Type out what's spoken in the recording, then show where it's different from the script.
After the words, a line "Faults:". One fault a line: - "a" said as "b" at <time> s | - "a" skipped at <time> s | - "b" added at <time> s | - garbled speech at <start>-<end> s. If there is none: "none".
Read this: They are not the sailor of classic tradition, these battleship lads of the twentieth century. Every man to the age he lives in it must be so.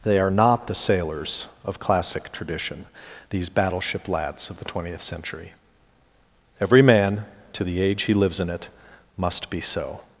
They are not the sailors of classic tradition, these battleship lads of the twentieth century. Every man to the age he lives in it must be so.
Faults:
- "sailor" said as "sailors" at 0.8 s